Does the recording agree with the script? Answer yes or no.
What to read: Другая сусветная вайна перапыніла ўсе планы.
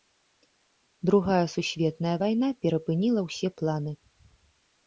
yes